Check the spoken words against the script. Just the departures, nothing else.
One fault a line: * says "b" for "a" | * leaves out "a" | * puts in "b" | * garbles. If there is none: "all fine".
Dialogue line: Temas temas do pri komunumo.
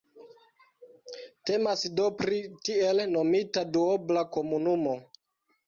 * leaves out "temas"
* puts in "tiel nomita duobla"